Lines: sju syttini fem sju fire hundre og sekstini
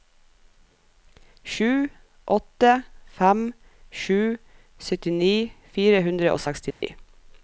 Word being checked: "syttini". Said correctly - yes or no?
no